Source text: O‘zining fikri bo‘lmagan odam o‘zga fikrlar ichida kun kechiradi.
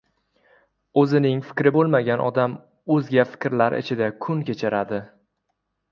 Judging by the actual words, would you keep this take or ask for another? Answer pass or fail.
pass